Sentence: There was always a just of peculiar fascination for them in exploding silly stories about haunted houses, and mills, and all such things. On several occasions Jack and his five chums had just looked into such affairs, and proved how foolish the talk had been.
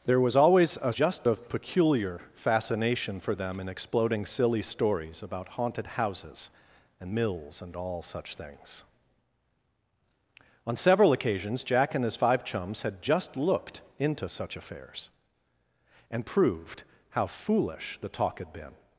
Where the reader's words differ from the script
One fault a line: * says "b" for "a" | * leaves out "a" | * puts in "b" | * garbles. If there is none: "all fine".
all fine